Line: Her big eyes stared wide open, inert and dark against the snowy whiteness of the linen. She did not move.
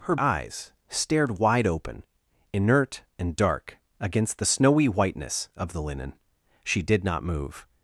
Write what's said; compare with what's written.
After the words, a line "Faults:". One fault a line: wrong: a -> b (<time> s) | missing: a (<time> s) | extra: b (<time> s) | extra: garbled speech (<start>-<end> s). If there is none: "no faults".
Her eyes stared wide open, inert and dark against the snowy whiteness of the linen. She did not move.
Faults:
missing: big (0.1 s)